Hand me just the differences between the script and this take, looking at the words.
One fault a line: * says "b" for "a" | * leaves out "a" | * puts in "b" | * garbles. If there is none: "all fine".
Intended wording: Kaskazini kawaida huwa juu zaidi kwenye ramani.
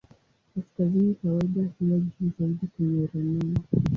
all fine